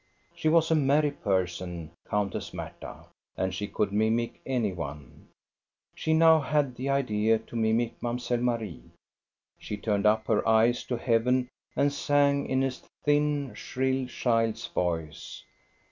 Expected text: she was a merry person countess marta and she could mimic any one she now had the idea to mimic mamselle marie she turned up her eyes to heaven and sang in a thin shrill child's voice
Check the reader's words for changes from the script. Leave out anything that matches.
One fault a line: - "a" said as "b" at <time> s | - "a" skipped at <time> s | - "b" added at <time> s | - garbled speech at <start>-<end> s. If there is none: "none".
none